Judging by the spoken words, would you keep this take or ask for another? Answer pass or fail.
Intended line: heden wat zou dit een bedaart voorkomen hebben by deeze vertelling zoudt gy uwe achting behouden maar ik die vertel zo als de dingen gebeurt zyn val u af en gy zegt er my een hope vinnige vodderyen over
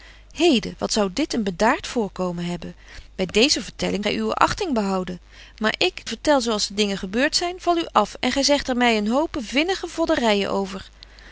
fail